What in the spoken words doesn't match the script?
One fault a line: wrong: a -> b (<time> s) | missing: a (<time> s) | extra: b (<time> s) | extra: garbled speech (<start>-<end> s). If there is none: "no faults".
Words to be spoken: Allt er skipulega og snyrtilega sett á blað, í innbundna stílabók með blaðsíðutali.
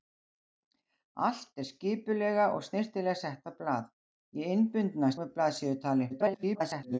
missing: stílabók (5.1 s)
extra: garbled speech (6.1-7.0 s)